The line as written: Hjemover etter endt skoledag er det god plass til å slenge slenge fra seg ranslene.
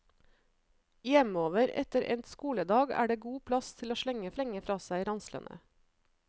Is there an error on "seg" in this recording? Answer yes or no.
no